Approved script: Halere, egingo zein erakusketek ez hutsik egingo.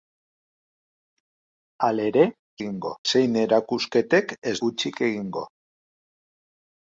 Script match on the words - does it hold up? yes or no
yes